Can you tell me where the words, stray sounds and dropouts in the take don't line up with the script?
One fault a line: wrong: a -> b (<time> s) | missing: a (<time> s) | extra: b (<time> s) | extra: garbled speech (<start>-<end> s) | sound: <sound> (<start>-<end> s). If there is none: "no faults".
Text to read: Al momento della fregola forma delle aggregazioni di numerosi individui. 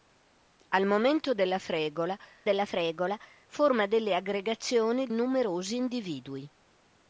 extra: della fregola (2.4 s)
missing: di (5.1 s)